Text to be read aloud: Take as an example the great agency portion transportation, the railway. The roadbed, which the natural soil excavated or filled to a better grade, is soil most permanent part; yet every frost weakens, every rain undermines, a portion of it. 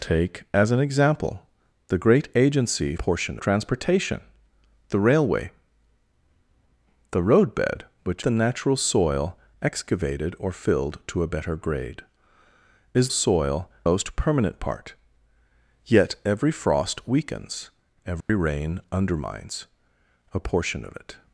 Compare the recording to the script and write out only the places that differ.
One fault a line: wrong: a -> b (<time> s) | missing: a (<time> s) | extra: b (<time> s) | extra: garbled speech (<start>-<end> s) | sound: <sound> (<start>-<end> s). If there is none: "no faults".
sound: dropout (18.2-18.3 s)